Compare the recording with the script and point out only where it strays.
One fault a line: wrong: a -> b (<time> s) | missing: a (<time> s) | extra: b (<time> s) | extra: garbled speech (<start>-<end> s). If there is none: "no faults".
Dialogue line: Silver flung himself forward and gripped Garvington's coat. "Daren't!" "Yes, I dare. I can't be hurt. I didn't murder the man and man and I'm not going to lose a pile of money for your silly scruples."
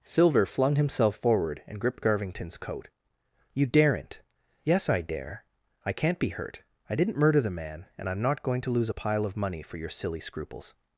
extra: You (3.5 s)
missing: man and (8.1 s)